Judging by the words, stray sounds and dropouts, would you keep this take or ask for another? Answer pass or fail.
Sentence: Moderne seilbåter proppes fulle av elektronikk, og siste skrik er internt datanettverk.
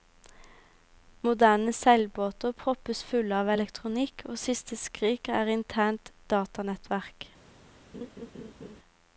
fail